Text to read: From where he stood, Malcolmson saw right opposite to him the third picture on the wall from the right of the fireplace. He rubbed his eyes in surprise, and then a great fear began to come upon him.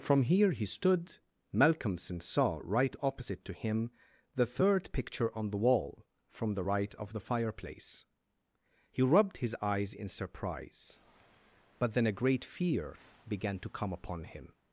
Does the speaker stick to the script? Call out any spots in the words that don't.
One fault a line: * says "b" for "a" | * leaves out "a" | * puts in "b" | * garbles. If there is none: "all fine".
* says "here" for "where"
* says "but" for "and"